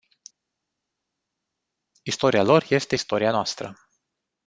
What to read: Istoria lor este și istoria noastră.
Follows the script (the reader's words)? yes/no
no